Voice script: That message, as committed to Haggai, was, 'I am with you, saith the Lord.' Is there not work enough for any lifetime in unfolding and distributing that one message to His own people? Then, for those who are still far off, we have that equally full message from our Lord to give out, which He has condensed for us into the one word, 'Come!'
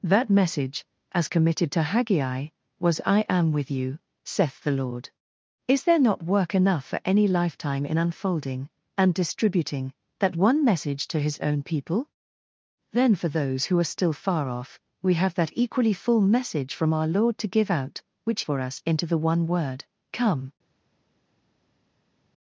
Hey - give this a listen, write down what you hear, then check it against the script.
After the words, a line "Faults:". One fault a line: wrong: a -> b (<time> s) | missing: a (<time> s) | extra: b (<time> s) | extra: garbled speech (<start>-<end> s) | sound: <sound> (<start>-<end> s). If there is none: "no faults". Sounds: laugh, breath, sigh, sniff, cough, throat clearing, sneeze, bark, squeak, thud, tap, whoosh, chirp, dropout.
That message, as committed to Haggai, was, 'I am with you, saith the Lord.' Is there not work enough for any lifetime in unfolding and distributing that one message to His own people? Then, for those who are still far off, we have that equally full message from our Lord to give out, which For us into the one word, 'Come!'
Faults:
missing: He has condensed (18.4 s)